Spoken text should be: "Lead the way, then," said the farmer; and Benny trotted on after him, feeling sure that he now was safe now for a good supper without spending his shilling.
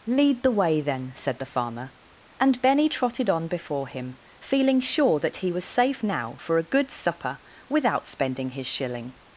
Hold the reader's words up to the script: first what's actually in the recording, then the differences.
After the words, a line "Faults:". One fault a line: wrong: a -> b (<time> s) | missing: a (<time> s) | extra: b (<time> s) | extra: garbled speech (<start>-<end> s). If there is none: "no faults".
"Lead the way, then," said the farmer; and Benny trotted on before him, feeling sure that he was safe now for a good supper without spending his shilling.
Faults:
wrong: after -> before (3.5 s)
missing: now (5.5 s)